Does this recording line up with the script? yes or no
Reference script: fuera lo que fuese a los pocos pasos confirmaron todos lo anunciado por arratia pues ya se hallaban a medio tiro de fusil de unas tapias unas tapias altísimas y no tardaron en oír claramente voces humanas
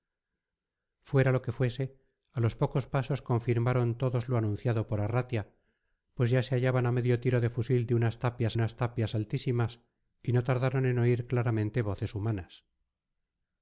yes